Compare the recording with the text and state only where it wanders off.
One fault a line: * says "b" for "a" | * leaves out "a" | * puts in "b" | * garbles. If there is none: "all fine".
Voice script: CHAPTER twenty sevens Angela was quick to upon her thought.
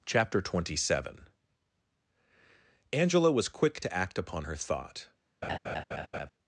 * says "seven" for "sevens"
* puts in "act"